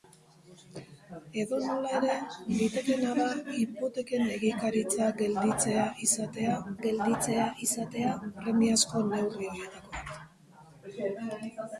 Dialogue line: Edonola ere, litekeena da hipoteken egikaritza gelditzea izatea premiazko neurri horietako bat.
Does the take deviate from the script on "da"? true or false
false